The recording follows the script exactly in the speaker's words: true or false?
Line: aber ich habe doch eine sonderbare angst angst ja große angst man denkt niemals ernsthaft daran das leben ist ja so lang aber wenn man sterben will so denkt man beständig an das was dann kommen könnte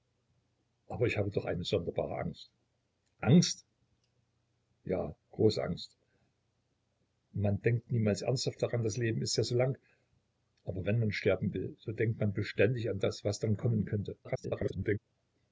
false